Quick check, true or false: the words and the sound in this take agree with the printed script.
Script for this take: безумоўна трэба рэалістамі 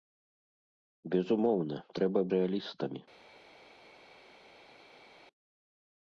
true